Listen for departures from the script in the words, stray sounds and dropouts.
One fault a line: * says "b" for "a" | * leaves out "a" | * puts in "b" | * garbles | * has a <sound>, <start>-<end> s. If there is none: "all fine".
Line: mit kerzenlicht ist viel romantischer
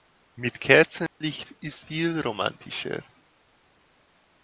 * has a dropout, 1.1-1.2 s